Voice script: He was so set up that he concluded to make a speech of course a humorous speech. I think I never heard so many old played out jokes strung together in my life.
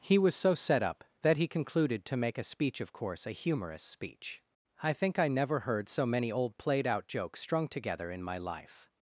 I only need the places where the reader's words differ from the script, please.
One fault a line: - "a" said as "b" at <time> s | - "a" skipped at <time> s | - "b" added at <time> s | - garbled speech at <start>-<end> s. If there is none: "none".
none